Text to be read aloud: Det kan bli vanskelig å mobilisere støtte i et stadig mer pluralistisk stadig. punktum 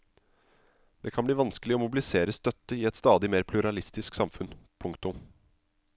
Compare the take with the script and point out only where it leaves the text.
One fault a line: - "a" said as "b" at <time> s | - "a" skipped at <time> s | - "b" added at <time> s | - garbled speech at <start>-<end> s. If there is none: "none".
- "stadig" said as "samfunn" at 4.2 s